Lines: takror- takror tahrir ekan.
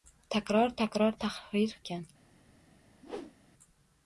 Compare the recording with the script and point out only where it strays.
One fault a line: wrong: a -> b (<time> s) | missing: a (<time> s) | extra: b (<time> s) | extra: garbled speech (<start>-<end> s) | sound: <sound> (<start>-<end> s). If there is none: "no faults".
sound: whoosh (3.0-3.4 s)